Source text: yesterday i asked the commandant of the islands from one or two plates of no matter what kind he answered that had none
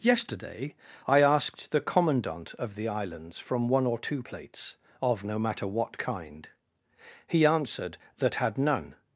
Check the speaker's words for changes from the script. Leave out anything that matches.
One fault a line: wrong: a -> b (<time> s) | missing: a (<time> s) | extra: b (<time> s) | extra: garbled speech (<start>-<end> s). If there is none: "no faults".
no faults